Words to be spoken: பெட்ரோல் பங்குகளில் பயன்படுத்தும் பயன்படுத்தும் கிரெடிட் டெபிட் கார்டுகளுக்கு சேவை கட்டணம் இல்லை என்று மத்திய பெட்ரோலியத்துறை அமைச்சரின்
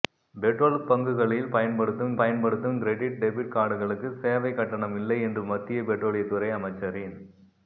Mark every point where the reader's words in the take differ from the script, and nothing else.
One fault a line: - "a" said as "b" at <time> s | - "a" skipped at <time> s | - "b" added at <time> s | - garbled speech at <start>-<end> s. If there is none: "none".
none